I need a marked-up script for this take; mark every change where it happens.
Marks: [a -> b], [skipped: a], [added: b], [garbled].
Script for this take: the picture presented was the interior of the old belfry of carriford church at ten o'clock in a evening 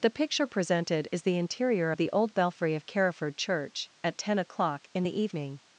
the picture presented [was -> is] the interior of the old belfry of carriford church at ten o'clock in [a -> the] evening